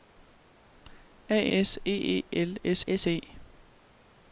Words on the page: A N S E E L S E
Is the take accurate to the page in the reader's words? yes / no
no